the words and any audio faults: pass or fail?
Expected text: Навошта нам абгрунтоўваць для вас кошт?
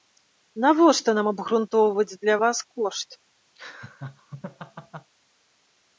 fail